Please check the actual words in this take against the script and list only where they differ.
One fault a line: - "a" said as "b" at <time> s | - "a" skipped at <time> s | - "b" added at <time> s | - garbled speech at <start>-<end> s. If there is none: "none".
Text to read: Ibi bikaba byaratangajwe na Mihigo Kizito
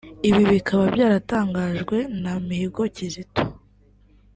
none